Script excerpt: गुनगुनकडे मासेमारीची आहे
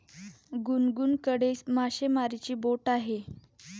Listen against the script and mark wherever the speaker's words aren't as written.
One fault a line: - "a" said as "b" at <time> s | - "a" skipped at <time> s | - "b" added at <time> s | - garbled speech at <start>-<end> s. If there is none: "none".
- "बोट" added at 2.6 s